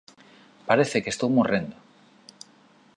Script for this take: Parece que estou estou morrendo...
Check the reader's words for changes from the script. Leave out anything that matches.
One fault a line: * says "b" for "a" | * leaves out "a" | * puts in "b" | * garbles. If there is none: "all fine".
* leaves out "estou"